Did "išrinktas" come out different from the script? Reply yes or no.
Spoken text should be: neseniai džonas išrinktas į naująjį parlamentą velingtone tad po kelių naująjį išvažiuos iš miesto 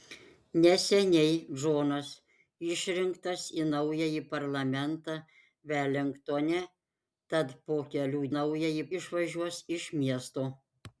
no